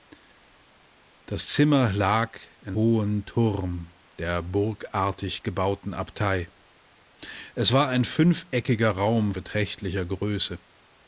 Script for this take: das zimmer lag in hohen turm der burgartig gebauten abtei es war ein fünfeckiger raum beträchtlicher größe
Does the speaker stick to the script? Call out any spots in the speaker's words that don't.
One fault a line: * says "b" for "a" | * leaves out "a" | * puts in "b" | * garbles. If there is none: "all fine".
all fine